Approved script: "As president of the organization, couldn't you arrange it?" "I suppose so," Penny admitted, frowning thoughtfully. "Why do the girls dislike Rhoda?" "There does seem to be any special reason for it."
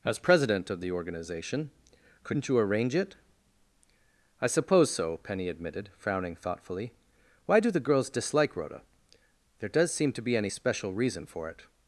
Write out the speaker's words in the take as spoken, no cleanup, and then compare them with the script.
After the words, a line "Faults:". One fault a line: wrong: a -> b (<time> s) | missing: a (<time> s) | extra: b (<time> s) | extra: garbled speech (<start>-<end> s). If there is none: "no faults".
"As president of the organization, couldn't you arrange it?" "I suppose so," Penny admitted, frowning thoughtfully. "Why do the girls dislike Rhoda?" "There does seem to be any special reason for it."
Faults:
no faults